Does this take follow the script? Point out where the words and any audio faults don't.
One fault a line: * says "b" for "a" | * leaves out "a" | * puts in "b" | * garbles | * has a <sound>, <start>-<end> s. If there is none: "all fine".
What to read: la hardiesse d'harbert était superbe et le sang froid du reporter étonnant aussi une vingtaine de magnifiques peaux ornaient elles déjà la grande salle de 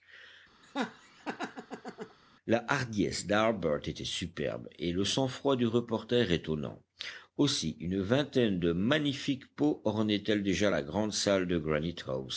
* has a laugh, 0.6-2.2 s